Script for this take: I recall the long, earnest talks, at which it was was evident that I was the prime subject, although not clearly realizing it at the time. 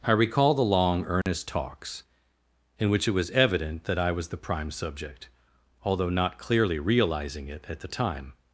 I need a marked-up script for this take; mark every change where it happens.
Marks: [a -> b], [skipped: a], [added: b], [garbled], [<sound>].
I recall the long, earnest [dropout] talks, [at -> in] which it was [skipped: was] evident that I was the prime subject, although not clearly realizing it at the time.